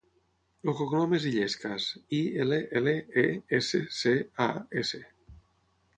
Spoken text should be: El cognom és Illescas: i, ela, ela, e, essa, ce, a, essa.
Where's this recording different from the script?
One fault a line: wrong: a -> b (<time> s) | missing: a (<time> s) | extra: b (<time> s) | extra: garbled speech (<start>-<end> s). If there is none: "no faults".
no faults